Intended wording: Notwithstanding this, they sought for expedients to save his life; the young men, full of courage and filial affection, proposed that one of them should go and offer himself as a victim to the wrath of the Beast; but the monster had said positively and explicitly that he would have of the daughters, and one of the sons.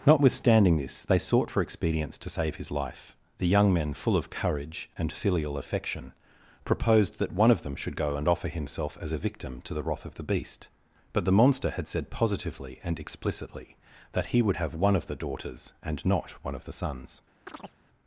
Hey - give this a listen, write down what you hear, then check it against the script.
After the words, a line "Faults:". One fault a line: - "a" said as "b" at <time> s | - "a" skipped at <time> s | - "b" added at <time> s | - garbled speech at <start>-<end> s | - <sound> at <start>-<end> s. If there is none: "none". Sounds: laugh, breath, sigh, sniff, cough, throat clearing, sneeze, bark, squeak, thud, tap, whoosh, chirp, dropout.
Notwithstanding this, they sought for expedients to save his life; the young men, full of courage and filial affection, proposed that one of them should go and offer himself as a victim to the wrath of the Beast; but the monster had said positively and explicitly that he would have one of the daughters, and not one of the sons.
Faults:
- "one" added at 14.7 s
- "not" added at 16.1 s
- chirp at 17.5-17.8 s